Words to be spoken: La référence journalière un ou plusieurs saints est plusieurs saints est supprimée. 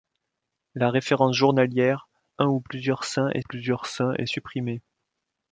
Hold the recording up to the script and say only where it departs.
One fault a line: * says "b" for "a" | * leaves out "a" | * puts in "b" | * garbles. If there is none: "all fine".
all fine